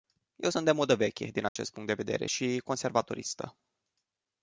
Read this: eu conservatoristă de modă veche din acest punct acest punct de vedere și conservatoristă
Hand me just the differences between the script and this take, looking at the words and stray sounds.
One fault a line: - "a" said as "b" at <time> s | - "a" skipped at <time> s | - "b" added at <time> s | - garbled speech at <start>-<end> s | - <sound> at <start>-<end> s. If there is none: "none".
- "conservatoristă" said as "sunt" at 0.5 s
- dropout at 1.5-1.6 s
- "acest punct" skipped at 1.9 s